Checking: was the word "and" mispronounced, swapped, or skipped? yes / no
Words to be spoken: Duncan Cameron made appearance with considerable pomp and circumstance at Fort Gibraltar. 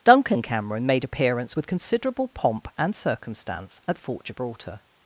no